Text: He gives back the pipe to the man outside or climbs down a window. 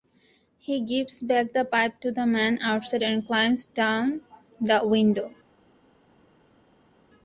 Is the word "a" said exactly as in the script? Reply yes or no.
no